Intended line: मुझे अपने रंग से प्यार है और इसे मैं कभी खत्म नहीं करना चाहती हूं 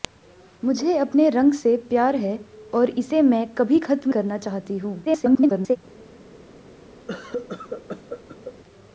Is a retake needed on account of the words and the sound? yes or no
yes